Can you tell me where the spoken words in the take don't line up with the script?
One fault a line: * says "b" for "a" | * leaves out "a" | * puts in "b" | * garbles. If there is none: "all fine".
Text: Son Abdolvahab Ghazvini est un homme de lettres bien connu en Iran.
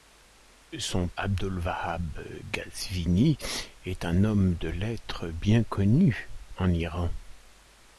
all fine